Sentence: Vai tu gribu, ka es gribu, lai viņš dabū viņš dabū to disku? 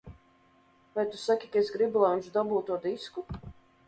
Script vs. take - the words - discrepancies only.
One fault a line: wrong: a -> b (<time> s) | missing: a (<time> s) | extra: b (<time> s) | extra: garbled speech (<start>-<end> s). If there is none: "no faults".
wrong: gribu -> saki (1.2 s)
missing: viņš dabū (2.6 s)